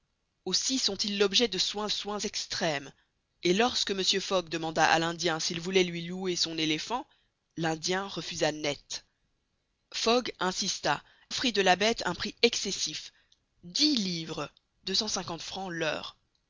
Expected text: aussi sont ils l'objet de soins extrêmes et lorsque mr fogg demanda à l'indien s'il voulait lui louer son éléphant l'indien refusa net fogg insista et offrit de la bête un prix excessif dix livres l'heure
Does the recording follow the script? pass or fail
fail